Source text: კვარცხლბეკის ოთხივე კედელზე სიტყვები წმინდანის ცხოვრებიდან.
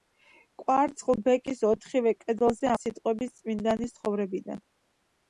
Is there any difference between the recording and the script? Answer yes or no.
no